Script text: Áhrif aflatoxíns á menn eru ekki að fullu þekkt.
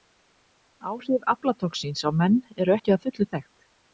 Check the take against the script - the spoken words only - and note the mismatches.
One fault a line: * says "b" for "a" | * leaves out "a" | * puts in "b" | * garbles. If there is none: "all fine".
all fine